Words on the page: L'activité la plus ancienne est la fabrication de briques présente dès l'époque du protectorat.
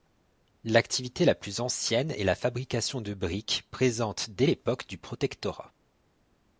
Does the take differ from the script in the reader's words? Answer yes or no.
no